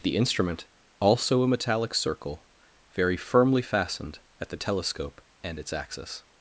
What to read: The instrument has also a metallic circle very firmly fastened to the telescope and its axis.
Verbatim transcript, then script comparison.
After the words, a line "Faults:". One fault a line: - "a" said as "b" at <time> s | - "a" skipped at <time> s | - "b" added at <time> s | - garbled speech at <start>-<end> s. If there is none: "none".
The instrument also a metallic circle very firmly fastened at the telescope and its axis.
Faults:
- "has" skipped at 0.7 s
- "to" said as "at" at 4.4 s